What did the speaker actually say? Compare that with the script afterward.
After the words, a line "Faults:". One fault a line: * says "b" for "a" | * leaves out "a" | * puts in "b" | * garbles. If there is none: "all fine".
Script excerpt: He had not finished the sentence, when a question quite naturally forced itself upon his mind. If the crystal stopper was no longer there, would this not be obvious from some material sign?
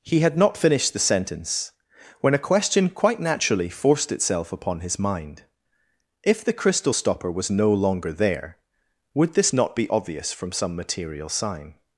He had not finished the sentence, when a question quite naturally forced itself upon his mind. If the crystal stopper was no longer there, would this not be obvious from some material sign?
Faults:
all fine